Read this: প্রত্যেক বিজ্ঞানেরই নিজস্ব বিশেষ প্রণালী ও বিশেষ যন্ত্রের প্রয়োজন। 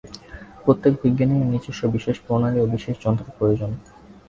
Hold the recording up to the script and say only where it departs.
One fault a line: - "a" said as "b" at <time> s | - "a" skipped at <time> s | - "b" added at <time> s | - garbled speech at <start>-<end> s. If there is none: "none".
none